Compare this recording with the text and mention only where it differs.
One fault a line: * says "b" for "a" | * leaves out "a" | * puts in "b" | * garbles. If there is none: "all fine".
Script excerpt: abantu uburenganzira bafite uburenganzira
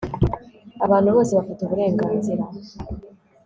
* says "bose" for "uburenganzira"